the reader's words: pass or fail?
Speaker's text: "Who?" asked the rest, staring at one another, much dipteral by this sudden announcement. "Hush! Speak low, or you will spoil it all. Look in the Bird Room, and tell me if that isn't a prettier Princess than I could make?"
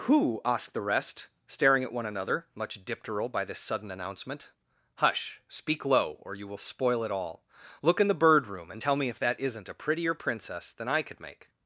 pass